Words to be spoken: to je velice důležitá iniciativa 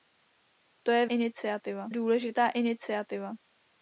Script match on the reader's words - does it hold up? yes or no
no